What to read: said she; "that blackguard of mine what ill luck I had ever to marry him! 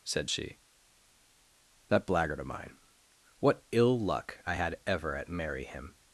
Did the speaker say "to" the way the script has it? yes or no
no